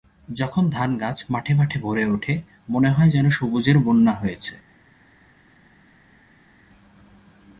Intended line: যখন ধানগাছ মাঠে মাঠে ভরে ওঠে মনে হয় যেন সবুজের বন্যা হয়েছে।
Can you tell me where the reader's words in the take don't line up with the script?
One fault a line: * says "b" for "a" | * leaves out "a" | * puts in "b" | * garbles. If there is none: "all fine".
all fine